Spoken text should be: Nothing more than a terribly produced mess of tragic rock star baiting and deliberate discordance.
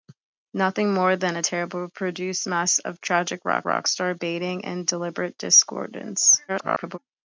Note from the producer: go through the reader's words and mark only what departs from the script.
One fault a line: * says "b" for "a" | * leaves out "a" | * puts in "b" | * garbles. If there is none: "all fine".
* puts in "rock"
* garbles